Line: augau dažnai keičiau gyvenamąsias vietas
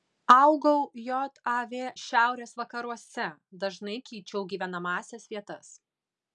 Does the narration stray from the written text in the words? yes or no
yes